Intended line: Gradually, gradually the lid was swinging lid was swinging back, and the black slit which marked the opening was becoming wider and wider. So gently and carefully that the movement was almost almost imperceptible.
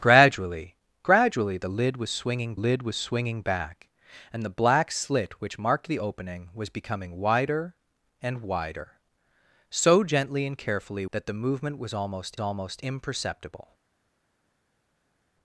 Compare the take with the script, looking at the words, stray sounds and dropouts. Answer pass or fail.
pass